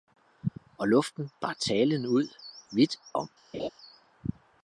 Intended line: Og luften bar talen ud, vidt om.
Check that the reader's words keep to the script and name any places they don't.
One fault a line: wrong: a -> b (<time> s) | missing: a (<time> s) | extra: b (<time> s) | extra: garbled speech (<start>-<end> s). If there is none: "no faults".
no faults